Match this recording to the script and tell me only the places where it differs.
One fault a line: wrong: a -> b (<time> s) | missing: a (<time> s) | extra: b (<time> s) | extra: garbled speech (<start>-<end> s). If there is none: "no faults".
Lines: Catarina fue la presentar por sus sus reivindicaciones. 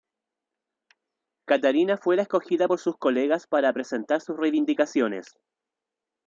wrong: presentar -> escogida (2.2 s)
extra: colegas para presentar (3.0 s)